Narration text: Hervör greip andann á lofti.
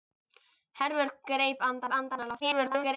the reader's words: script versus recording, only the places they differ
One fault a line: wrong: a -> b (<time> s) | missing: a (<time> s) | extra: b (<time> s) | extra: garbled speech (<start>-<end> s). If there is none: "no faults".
extra: andann (2.0 s)
extra: garbled speech (2.4-3.0 s)